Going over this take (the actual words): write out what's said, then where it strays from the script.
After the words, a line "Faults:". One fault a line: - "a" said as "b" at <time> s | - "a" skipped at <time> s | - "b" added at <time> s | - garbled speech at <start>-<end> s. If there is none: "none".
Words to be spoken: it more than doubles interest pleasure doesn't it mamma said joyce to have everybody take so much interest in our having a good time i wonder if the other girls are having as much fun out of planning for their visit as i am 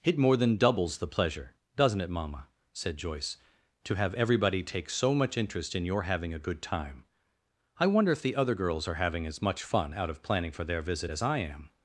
it more than doubles the pleasure doesn't it mamma said joyce to have everybody take so much interest in your having a good time i wonder if the other girls are having as much fun out of planning for their visit as i am
Faults:
- "interest" said as "the" at 1.0 s
- "our" said as "your" at 5.8 s